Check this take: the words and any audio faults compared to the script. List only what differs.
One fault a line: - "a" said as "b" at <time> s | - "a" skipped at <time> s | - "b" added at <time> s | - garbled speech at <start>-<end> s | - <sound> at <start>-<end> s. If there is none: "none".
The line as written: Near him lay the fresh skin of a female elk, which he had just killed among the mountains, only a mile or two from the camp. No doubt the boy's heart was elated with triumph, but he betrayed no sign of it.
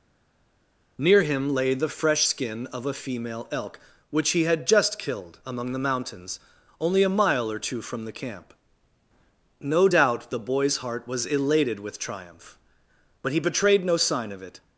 none